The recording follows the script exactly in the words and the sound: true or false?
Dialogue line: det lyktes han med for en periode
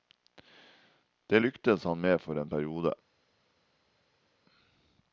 true